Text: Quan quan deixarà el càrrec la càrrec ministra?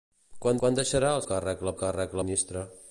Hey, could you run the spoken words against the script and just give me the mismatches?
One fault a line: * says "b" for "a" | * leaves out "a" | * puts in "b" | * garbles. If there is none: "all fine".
all fine